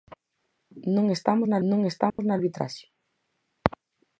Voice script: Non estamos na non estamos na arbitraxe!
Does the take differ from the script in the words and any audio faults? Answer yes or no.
yes